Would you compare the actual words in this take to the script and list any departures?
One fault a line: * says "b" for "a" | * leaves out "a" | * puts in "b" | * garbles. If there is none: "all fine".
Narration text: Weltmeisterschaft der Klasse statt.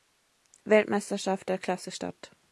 all fine